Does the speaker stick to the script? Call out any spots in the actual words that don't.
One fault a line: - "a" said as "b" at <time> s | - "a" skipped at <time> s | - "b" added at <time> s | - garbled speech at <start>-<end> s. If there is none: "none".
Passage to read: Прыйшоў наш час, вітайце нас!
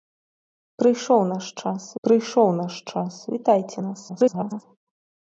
- "прыйшоў наш час" added at 2.1 s
- garbled speech at 4.1-4.6 s